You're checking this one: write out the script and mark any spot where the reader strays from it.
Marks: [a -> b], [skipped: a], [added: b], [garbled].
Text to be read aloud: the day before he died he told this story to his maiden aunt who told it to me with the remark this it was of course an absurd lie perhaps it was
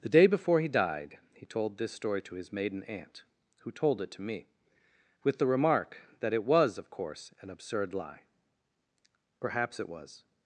the day before he died he told this story to his maiden aunt who told it to me with the remark [this -> that] it was of course an absurd lie perhaps it was